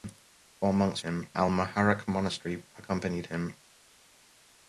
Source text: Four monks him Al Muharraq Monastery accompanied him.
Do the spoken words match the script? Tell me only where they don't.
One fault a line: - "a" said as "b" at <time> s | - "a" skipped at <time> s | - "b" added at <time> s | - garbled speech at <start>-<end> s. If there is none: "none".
none